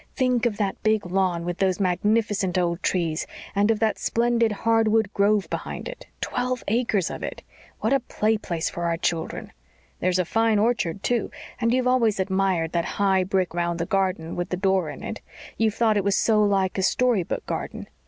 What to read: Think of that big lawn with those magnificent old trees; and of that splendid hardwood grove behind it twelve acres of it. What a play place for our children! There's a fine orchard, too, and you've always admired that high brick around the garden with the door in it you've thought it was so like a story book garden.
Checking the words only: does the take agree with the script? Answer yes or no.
yes